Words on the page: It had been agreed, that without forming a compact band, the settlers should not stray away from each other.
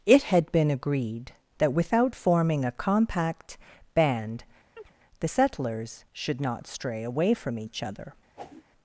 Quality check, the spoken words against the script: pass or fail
pass